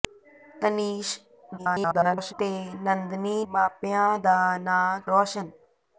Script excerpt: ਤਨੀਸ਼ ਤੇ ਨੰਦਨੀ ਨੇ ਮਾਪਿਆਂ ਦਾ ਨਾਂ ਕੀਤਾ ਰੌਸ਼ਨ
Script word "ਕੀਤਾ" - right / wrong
wrong